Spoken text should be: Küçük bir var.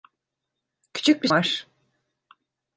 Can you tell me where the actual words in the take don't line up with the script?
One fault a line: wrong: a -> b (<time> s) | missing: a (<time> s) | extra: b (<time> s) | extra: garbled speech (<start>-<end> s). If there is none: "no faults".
no faults